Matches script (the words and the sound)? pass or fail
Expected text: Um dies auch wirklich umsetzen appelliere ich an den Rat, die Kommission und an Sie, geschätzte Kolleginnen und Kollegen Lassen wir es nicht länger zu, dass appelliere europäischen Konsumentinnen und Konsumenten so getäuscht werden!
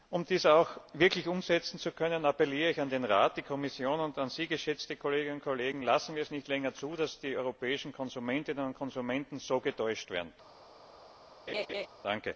fail